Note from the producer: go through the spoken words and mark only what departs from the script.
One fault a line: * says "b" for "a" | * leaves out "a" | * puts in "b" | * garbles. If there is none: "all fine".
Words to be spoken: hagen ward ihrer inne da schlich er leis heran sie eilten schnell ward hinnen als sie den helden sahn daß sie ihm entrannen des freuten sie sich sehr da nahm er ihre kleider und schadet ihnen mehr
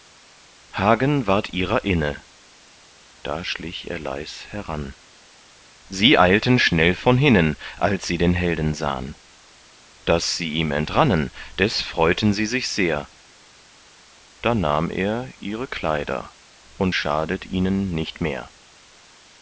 * says "von" for "ward"
* puts in "nicht"